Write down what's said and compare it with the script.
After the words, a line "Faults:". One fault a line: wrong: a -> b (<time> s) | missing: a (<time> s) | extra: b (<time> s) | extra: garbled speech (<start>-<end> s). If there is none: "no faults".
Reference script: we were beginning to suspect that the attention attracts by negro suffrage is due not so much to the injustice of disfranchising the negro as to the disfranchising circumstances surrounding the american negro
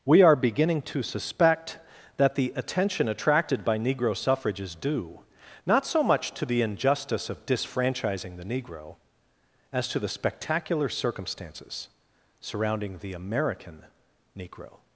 we are beginning to suspect that the attention attracted by negro suffrage is due not so much to the injustice of disfranchising the negro as to the spectacular circumstances surrounding the american negro
Faults:
wrong: were -> are (0.2 s)
wrong: attracts -> attracted (3.1 s)
wrong: disfranchising -> spectacular (10.1 s)